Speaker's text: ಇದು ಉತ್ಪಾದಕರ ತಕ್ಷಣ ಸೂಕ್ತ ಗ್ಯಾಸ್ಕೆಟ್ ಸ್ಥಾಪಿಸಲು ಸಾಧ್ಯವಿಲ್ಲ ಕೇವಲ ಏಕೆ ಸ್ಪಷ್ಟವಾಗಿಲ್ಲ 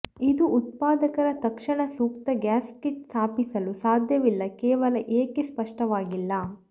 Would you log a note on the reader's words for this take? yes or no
no